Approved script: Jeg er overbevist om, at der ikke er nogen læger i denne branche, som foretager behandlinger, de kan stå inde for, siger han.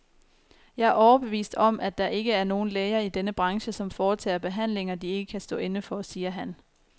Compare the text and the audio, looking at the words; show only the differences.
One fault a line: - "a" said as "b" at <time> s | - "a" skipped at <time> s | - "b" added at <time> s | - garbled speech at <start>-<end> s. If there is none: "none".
- "ikke" added at 5.1 s